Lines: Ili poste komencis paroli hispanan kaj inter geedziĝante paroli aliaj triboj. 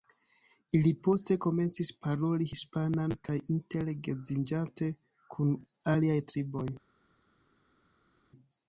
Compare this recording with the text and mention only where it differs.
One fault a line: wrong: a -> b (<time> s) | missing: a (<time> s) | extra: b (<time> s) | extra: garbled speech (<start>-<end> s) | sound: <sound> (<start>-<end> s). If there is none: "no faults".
wrong: paroli -> kun (5.4 s)